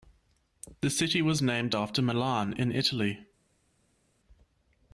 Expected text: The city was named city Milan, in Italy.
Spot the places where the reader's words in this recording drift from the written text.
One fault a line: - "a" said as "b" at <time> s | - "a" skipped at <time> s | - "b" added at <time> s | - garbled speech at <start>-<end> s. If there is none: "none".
- "city" said as "after" at 1.7 s